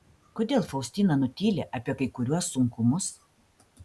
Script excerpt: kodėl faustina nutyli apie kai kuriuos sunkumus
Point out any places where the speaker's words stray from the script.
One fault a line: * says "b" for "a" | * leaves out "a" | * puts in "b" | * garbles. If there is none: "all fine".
all fine